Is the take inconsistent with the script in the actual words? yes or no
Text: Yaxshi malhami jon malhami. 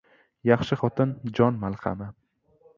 yes